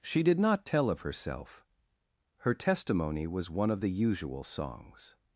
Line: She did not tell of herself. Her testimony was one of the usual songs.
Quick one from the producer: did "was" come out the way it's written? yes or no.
yes